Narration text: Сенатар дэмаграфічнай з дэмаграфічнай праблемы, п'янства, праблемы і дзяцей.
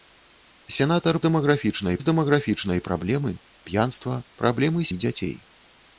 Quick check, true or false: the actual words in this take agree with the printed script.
true